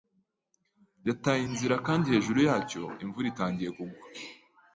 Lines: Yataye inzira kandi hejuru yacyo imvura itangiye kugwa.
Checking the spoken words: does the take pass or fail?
pass